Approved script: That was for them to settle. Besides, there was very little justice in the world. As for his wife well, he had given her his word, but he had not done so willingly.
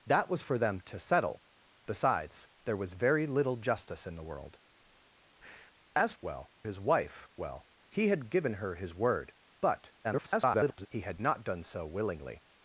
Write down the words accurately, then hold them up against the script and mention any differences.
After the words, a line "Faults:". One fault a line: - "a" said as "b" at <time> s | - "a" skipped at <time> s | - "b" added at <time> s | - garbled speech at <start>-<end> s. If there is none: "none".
That was for them to settle. Besides, there was very little justice in the world. As well his wife well, he had given her his word, but [garbled] he had not done so willingly.
Faults:
- "for" said as "well" at 6.2 s
- garbled speech at 10.0-10.9 s